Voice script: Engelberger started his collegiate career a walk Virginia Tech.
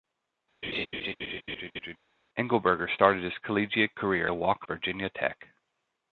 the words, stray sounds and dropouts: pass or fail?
fail